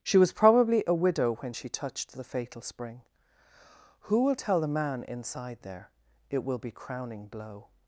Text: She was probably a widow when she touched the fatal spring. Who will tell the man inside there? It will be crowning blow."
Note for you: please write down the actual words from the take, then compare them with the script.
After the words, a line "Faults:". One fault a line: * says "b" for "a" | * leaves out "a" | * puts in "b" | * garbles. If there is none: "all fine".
She was probably a widow when she touched the fatal spring. Who will tell the man inside there? It will be crowning blow."
Faults:
all fine